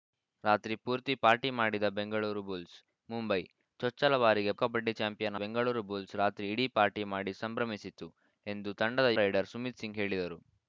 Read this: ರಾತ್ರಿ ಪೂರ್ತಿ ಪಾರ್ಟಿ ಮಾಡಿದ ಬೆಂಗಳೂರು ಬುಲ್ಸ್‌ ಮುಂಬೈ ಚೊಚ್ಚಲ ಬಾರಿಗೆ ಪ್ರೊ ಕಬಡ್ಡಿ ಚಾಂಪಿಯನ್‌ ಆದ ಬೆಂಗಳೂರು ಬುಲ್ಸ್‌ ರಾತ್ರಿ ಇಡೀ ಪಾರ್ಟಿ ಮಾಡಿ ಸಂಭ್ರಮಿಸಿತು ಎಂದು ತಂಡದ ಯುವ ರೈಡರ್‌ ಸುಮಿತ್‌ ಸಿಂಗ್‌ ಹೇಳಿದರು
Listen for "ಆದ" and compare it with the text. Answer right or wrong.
wrong